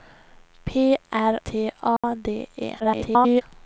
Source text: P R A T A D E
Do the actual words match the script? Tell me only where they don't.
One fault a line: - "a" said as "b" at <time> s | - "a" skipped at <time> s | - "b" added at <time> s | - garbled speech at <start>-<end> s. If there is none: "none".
- "A" skipped at 1.4 s
- garbled speech at 2.8-3.4 s